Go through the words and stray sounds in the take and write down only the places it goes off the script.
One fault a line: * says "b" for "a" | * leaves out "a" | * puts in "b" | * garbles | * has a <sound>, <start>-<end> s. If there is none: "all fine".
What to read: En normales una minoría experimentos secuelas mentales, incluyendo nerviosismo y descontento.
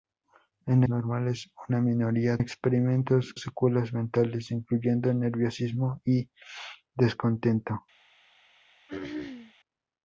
* has a throat clearing, 8.9-9.5 s